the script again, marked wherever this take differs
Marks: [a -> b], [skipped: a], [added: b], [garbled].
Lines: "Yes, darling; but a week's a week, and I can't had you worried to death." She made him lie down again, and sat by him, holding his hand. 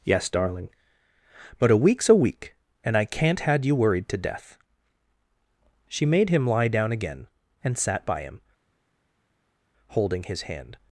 "Yes, darling; but a week's a week, and I can't had you worried to death." She made him lie down again, and sat by him, holding his hand.